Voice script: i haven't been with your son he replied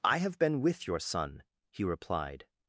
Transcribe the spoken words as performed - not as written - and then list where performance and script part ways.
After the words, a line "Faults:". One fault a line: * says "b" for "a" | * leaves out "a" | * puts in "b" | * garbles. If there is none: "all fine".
i have been with your son he replied
Faults:
* says "have" for "haven't"